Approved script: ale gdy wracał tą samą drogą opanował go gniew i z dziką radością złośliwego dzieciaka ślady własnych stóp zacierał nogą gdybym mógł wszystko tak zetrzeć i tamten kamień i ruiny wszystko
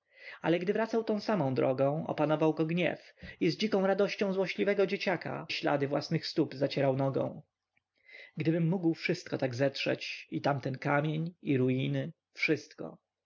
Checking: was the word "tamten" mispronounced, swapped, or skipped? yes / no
no